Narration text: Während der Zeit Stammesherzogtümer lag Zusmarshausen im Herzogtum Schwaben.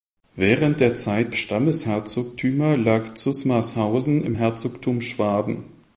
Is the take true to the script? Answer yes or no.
yes